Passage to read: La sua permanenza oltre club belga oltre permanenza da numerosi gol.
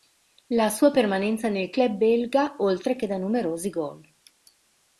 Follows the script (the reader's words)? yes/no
no